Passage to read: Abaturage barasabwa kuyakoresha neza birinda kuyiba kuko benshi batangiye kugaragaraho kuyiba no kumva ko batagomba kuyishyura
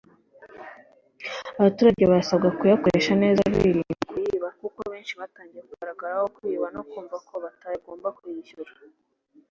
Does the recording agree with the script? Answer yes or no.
yes